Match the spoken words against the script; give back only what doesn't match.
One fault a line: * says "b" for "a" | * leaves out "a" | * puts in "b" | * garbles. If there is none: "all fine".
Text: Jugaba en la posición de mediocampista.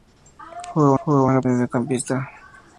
* puts in "jugaba"
* leaves out "posición"